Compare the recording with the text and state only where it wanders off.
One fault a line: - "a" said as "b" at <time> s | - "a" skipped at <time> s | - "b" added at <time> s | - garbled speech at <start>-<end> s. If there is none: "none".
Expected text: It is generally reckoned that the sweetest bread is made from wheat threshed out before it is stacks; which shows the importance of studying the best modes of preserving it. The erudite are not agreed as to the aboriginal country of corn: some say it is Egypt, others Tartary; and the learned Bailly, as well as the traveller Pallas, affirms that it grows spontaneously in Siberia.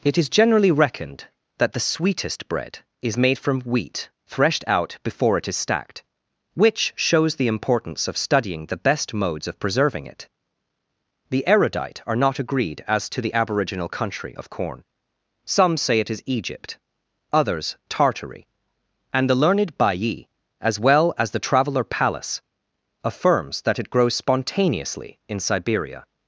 - "stacks" said as "stacked" at 5.5 s